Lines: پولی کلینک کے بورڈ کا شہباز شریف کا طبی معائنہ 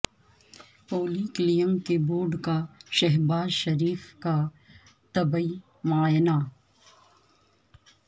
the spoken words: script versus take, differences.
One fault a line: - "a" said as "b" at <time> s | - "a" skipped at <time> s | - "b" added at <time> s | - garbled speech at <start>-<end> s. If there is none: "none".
none